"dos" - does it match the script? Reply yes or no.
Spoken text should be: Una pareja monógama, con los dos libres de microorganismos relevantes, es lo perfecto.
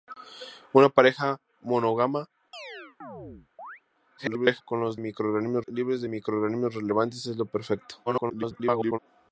no